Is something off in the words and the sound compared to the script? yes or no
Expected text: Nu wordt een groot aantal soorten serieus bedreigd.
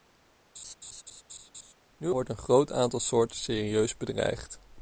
yes